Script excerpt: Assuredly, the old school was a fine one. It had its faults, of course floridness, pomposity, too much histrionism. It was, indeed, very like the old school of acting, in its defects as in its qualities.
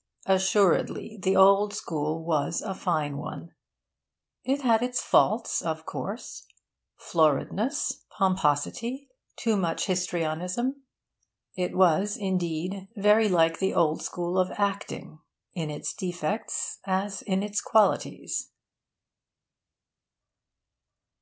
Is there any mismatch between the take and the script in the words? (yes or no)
no